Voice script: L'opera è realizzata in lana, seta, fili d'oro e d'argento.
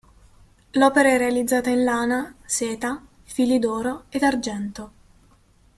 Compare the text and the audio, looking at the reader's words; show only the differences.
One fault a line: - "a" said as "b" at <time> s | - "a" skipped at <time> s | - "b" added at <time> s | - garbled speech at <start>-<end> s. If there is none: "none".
none